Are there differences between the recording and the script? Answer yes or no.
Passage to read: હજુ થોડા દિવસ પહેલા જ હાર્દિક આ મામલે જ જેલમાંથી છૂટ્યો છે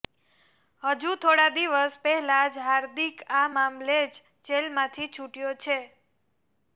no